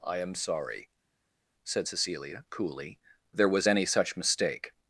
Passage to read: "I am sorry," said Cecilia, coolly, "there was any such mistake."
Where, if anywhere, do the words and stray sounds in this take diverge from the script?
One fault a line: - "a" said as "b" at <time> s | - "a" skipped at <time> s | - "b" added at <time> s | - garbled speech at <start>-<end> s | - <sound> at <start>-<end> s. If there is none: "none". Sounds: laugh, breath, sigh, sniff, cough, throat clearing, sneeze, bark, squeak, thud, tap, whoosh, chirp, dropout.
none